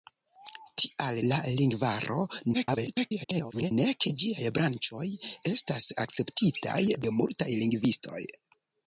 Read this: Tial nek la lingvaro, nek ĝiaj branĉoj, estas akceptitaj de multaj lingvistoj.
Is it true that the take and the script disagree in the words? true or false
true